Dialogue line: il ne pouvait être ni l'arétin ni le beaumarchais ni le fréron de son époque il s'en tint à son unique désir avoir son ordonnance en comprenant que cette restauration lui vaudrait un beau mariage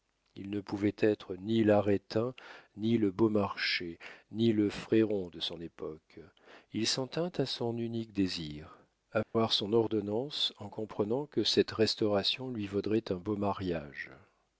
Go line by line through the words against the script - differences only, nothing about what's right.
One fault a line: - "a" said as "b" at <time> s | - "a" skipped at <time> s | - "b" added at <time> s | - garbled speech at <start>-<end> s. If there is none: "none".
none